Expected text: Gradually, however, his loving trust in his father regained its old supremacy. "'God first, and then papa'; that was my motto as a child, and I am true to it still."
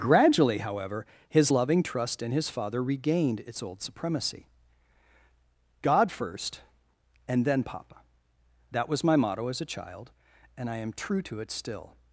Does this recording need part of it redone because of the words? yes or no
no